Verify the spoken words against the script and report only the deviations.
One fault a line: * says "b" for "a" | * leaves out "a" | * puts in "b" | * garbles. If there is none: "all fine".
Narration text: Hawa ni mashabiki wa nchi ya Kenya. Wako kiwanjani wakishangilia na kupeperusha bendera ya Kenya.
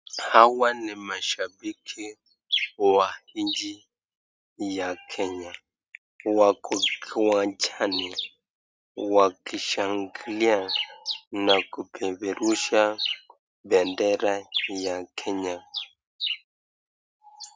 all fine